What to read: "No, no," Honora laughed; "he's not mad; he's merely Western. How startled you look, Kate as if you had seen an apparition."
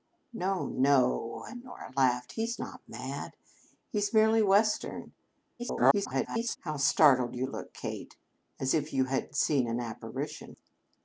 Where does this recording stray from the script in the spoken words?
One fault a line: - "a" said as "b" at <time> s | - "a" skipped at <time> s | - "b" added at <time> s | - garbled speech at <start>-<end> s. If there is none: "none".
- garbled speech at 5.6-6.6 s